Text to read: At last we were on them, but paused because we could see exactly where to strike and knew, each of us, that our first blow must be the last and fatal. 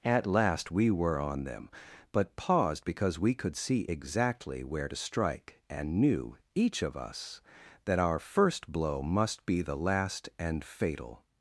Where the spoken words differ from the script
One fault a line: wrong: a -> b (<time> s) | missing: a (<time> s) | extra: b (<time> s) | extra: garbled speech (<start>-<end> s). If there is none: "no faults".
no faults